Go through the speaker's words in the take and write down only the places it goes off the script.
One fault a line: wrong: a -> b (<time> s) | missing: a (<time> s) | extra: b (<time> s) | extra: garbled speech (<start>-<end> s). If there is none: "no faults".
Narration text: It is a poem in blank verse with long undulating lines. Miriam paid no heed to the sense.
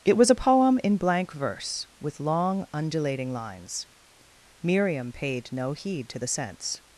wrong: is -> was (0.2 s)